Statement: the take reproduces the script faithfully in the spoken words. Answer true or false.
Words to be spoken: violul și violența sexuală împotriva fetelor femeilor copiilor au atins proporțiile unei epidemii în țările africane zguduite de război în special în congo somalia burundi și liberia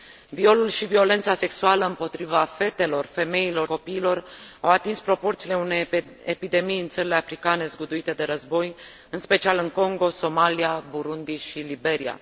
true